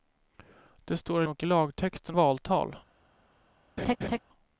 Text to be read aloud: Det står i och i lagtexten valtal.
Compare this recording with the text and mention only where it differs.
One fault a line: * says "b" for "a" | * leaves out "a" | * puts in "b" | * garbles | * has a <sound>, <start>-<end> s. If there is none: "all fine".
* has a laugh, 3.8-4.2 s